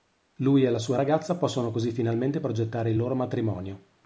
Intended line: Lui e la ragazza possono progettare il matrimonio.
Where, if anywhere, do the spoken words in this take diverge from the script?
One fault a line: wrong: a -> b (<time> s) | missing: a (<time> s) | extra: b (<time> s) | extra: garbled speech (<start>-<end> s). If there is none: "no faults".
extra: sua (0.8 s)
extra: così finalmente (1.7 s)
extra: loro (3.0 s)